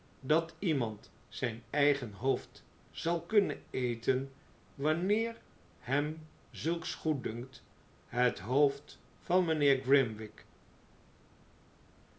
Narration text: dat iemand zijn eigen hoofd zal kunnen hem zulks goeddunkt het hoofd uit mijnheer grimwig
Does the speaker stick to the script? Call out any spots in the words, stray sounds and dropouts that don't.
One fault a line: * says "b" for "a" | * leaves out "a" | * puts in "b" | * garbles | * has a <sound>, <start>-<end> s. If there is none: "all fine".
* puts in "eten wanneer"
* says "van" for "uit"